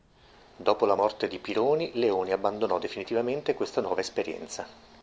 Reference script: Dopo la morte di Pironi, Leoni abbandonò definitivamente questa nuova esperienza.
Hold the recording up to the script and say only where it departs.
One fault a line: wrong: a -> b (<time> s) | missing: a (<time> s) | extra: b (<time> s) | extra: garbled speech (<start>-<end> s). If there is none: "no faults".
no faults